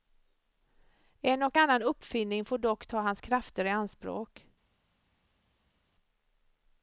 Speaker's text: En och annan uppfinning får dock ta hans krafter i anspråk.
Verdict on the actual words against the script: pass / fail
pass